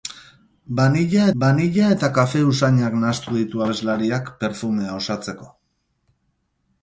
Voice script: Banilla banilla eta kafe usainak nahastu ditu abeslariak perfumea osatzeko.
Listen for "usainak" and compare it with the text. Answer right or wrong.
right